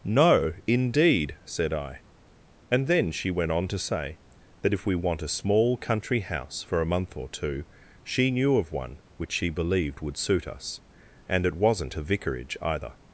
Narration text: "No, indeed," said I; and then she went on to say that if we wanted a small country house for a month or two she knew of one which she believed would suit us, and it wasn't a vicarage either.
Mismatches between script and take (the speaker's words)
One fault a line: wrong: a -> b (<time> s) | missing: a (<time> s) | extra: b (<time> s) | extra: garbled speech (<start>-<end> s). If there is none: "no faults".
wrong: wanted -> want (5.0 s)